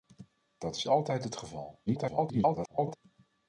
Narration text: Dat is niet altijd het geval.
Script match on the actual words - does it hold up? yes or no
no